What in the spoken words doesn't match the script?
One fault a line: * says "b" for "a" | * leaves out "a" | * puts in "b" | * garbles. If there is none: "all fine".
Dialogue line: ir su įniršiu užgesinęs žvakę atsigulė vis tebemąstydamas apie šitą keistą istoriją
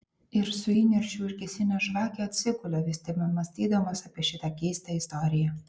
all fine